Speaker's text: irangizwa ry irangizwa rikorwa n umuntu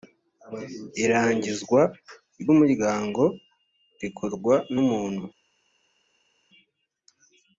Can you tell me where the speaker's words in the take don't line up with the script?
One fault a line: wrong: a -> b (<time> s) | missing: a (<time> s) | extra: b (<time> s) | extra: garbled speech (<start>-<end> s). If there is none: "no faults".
wrong: irangizwa -> umuryango (2.5 s)